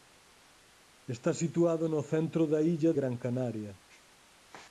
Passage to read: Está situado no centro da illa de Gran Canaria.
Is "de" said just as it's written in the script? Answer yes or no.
no